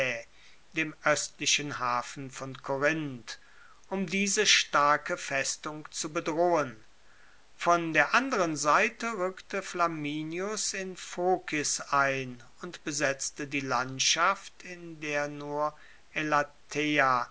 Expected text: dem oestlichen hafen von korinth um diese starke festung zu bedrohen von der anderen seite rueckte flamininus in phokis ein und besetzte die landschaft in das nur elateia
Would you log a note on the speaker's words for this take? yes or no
yes